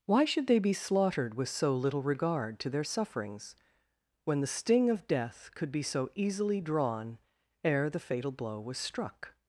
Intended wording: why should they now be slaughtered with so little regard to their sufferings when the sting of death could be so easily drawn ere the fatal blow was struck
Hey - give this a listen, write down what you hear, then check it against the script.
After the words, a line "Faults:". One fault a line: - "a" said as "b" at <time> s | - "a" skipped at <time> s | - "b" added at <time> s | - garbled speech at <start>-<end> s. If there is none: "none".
why should they be slaughtered with so little regard to their sufferings when the sting of death could be so easily drawn ere the fatal blow was struck
Faults:
- "now" skipped at 0.6 s